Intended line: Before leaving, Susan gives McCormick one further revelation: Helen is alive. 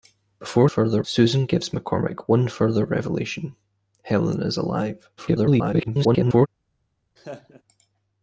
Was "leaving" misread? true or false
true